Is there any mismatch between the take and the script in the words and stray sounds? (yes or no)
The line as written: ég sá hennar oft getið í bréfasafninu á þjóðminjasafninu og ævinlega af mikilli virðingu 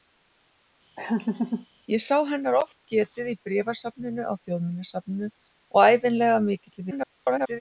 yes